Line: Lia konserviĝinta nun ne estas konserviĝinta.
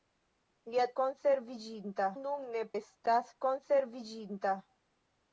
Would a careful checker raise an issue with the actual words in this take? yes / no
no